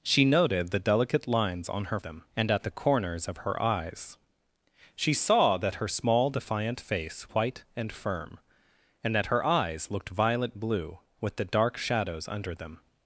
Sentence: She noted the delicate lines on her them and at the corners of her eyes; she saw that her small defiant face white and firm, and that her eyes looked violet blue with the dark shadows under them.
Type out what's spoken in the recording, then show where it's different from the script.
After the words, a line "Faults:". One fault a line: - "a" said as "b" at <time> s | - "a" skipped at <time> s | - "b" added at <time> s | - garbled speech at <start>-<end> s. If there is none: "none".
She noted the delicate lines on her them and at the corners of her eyes; she saw that her small defiant face white and firm, and that her eyes looked violet blue with the dark shadows under them.
Faults:
none